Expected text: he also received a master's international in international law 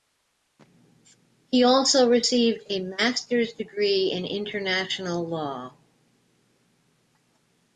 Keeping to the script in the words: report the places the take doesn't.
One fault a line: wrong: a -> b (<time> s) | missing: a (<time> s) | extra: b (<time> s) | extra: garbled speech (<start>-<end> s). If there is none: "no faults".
wrong: international -> degree (3.5 s)